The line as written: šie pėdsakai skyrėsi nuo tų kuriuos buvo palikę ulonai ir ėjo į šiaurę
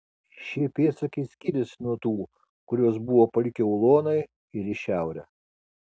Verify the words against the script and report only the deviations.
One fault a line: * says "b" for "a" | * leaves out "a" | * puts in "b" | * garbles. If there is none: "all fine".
* leaves out "ėjo"